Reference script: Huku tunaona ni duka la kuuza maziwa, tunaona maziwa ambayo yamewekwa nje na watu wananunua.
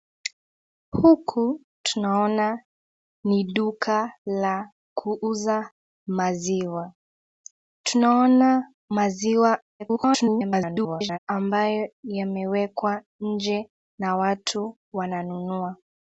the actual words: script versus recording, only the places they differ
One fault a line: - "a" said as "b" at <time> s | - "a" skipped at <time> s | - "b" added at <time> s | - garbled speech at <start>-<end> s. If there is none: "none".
- garbled speech at 9.8-11.2 s